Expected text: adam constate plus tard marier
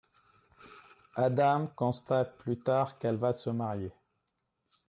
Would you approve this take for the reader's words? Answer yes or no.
no